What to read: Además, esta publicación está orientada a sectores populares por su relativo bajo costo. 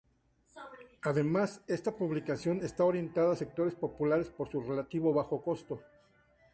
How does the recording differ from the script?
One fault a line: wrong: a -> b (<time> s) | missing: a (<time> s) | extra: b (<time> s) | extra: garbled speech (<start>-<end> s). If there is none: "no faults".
no faults